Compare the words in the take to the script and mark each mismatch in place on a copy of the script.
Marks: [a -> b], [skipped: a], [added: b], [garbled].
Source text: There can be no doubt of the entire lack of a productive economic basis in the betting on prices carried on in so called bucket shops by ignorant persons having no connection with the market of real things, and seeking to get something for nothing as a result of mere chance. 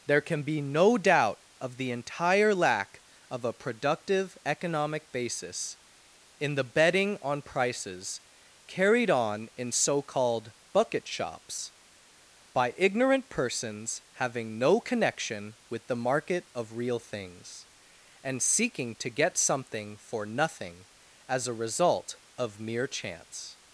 There can be no doubt of the entire lack of a productive economic basis in the betting on prices carried on in so called bucket shops by ignorant persons having no connection with the market of real things, and seeking to get something for nothing as a result of mere chance.